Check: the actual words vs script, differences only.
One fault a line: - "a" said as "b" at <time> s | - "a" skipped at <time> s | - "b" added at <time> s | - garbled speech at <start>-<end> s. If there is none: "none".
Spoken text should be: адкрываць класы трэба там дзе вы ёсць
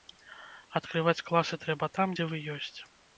none